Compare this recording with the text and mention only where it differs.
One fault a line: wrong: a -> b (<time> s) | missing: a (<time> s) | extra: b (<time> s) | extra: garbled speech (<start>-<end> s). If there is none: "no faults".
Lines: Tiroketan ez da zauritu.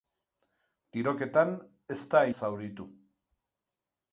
no faults